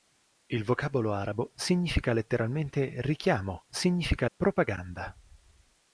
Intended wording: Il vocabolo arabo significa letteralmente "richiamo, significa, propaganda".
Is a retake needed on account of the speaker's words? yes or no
no